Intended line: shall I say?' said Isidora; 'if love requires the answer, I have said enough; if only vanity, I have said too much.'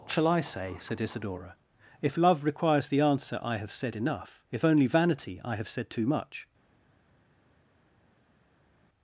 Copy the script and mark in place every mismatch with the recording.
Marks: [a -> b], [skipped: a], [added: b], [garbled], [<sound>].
shall I say?' said Isidora; 'if love requires the answer, I have said enough; if only vanity, I have said too much.'